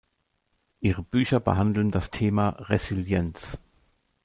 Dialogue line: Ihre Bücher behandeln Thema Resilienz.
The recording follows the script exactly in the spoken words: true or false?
false